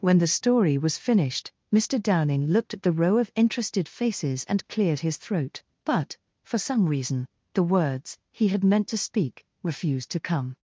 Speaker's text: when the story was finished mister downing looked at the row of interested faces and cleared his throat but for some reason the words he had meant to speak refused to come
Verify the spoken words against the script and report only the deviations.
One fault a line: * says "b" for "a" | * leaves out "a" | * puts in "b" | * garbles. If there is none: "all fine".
all fine